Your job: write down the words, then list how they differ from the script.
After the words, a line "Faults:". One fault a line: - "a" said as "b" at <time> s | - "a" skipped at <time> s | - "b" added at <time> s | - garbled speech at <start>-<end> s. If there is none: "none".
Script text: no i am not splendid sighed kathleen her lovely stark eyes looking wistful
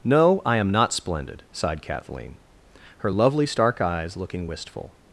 no i am not splendid sighed kathleen her lovely stark eyes looking wistful
Faults:
none